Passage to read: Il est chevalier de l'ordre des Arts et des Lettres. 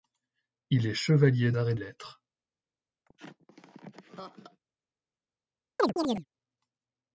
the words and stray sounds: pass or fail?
fail